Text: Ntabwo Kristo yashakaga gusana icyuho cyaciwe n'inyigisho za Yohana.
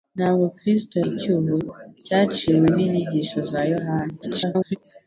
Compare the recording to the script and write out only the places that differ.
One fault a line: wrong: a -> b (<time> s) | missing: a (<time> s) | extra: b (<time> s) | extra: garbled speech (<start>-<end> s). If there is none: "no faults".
missing: yashakaga gusana (0.9 s)
extra: garbled speech (4.2-4.8 s)